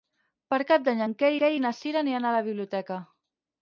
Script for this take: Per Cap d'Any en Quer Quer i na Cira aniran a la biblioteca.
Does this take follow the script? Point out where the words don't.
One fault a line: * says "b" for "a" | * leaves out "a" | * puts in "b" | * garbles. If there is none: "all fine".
all fine